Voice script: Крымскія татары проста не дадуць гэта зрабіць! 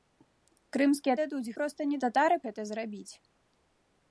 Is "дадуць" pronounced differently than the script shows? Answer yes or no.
yes